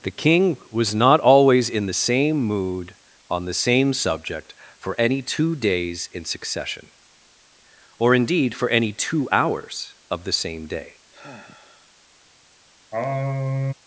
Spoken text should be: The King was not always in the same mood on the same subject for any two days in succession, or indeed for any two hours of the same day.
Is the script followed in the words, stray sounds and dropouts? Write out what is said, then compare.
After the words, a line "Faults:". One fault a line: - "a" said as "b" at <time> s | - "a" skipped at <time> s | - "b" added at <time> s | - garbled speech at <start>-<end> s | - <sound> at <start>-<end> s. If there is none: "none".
The King was not always in the same mood on the same subject for any two days in succession, or indeed for any two hours of the same day.
Faults:
- sigh at 11.1-11.9 s
- sigh at 12.9-13.7 s